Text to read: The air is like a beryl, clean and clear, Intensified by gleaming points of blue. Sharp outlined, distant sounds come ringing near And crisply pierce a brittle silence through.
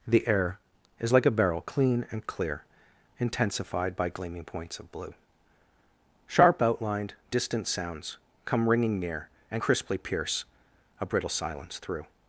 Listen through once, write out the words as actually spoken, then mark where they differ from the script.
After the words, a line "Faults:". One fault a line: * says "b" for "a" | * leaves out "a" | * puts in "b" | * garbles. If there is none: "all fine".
The air is like a beryl, clean and clear, Intensified by gleaming points of blue. Sharp outlined, distant sounds come ringing near And crisply pierce a brittle silence through.
Faults:
all fine